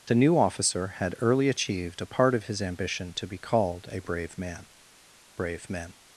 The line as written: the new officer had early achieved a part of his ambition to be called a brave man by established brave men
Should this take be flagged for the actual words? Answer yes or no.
yes